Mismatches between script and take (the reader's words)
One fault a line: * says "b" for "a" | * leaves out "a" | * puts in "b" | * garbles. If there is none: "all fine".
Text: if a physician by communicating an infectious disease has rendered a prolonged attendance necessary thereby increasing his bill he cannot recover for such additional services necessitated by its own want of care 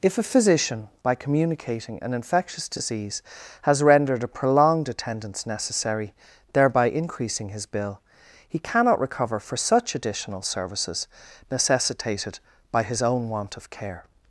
* says "his" for "its"